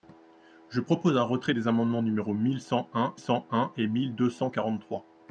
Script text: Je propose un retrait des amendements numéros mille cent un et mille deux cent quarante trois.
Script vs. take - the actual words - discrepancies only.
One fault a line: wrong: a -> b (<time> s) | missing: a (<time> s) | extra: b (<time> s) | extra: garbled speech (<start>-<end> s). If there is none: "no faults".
extra: cent un (3.2 s)